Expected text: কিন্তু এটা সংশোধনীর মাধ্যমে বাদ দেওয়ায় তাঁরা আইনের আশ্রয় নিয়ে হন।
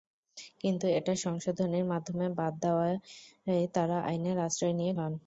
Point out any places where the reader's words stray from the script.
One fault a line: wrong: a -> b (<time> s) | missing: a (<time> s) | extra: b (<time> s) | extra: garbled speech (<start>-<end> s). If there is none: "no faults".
no faults